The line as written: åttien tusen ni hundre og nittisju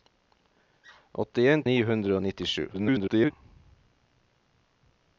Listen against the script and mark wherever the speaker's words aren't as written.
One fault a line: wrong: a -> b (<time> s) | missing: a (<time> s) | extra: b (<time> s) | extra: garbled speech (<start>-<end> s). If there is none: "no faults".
missing: tusen (1.6 s)
extra: garbled speech (2.7-3.3 s)